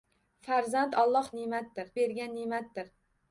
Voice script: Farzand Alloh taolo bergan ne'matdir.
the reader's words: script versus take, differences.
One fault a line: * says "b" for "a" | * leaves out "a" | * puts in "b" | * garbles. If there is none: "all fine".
* says "ne'matdir" for "taolo"